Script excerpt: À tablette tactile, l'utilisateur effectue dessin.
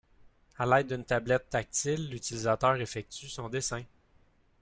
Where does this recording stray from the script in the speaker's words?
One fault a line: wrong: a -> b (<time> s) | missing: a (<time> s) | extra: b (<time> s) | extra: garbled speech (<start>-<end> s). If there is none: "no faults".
extra: l'aide d'une (0.7 s)
extra: son (3.3 s)